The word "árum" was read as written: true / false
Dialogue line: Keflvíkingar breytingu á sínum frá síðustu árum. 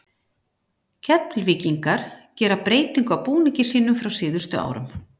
true